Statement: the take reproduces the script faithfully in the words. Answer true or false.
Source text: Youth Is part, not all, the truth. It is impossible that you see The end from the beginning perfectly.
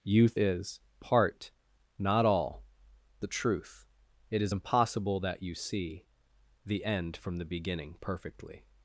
true